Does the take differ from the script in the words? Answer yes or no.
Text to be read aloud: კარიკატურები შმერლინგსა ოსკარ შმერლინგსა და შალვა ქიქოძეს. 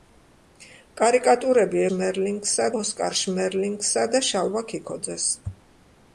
no